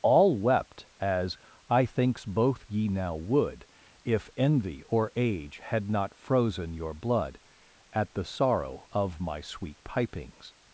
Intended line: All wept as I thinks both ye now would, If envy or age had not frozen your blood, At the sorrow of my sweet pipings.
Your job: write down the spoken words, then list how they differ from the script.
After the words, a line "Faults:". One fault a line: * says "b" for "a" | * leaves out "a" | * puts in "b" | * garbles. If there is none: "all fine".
All wept as I thinks both ye now would, If envy or age had not frozen your blood, At the sorrow of my sweet pipings.
Faults:
all fine